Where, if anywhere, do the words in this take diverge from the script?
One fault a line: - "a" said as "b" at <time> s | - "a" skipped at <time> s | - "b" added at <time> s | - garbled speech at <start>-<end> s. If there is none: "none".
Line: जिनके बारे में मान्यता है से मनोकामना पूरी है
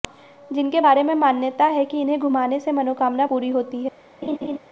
- "कि इन्हें घुमाने" added at 1.8 s
- "होती" added at 3.5 s